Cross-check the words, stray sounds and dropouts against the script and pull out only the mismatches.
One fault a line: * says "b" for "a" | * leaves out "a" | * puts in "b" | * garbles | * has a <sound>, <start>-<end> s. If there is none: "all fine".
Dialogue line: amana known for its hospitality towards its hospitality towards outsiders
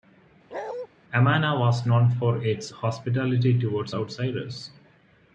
* has a bark, 0.5-0.9 s
* puts in "was"
* leaves out "its hospitality towards"